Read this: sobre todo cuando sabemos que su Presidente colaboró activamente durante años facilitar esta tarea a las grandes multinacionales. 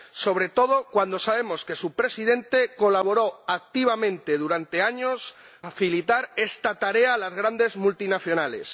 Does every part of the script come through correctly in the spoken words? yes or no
yes